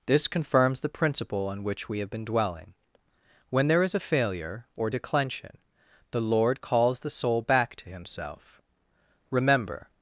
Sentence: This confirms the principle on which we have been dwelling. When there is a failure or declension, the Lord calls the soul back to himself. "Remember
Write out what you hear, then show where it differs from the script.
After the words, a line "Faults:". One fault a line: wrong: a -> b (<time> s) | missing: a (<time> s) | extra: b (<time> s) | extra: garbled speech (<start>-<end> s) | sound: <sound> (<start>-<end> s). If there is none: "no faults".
This confirms the principle on which we have been dwelling. When there is a failure or declension, the Lord calls the soul back to himself. "Remember
Faults:
no faults